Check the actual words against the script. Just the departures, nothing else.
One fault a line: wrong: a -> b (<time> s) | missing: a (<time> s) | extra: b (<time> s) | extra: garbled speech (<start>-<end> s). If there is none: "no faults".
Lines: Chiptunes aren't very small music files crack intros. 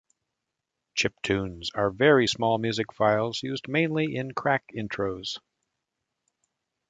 wrong: aren't -> are (1.8 s)
extra: used mainly in (3.4 s)